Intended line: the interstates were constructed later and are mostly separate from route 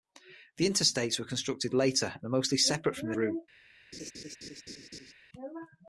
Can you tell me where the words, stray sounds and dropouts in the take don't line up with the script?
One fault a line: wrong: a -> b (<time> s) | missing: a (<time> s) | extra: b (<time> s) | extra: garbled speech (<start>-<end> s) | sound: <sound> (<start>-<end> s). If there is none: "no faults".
sound: laugh (3.9-5.1 s)